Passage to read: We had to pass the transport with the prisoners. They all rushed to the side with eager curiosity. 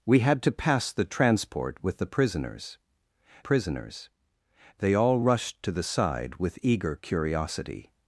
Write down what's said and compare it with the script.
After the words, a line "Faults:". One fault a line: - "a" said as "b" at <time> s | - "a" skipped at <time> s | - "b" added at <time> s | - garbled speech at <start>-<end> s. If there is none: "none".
We had to pass the transport with the prisoners prisoners. They all rushed to the side with eager curiosity.
Faults:
- "prisoners" added at 3.4 s